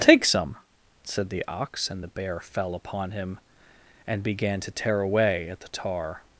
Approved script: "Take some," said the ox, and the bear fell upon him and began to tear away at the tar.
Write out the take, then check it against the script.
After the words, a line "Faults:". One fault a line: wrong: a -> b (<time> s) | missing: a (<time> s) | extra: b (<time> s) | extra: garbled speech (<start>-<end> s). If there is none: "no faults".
"Take some," said the ox, and the bear fell upon him and began to tear away at the tar.
Faults:
no faults